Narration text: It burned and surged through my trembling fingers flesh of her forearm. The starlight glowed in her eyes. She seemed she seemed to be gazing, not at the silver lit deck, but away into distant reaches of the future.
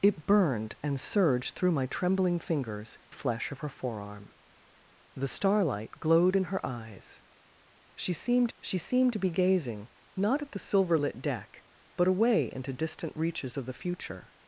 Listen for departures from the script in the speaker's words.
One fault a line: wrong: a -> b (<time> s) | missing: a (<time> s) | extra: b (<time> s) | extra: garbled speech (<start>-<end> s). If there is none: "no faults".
no faults